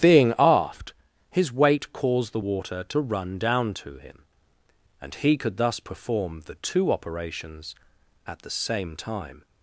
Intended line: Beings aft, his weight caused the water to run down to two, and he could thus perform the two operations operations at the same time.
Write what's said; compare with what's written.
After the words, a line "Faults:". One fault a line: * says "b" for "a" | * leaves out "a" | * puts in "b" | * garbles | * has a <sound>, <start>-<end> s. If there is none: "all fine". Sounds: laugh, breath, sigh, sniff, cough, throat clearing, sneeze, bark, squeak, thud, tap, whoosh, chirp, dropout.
Being aft, his weight caused the water to run down to him, and he could thus perform the two operations at the same time.
Faults:
* says "Being" for "Beings"
* says "him" for "two"
* leaves out "operations"